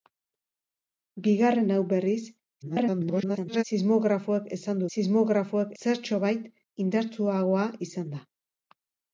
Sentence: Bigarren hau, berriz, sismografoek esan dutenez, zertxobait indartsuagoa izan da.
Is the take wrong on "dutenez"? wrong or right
wrong